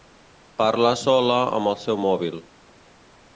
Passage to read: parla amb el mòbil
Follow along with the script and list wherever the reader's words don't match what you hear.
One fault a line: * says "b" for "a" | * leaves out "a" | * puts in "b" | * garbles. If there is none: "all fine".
* puts in "sola"
* puts in "seu"